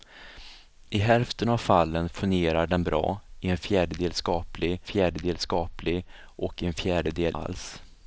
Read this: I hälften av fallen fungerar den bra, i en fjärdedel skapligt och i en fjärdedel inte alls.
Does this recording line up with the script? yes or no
no